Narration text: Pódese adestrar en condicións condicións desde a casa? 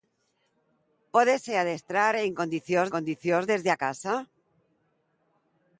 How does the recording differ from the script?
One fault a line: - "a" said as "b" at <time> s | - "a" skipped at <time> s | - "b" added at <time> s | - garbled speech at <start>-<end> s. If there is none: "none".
none